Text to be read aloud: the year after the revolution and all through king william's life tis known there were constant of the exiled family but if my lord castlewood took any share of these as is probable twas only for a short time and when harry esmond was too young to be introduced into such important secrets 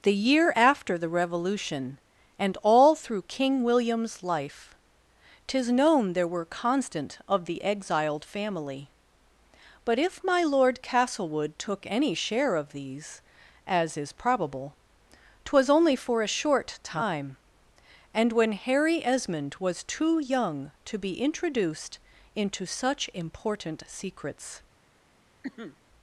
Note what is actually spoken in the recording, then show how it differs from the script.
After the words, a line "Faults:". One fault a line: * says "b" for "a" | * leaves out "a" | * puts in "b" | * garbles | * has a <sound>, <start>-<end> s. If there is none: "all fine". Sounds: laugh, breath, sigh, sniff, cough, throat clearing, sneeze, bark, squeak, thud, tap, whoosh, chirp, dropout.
the year after the revolution and all through king william's life tis known there were constant of the exiled family but if my lord castlewood took any share of these as is probable twas only for a short time and when harry esmond was too young to be introduced into such important secrets
Faults:
* has a cough, 25.4-25.8 s